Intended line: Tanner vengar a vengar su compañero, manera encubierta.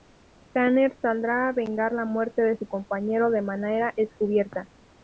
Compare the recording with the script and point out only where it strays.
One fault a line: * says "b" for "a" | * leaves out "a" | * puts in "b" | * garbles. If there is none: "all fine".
* says "saldrá" for "vengar"
* puts in "la muerte de"
* puts in "de"